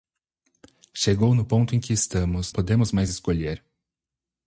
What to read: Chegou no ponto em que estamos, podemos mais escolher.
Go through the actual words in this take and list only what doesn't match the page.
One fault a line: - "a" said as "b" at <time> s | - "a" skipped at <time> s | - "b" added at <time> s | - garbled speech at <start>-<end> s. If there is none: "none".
none